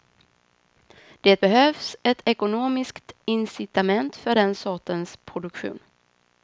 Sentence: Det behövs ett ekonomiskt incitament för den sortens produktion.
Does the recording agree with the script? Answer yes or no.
yes